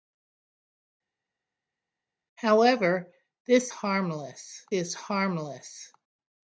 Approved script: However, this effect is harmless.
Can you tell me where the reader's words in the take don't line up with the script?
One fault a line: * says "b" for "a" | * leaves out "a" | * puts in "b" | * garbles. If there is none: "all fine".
* says "harmless" for "effect"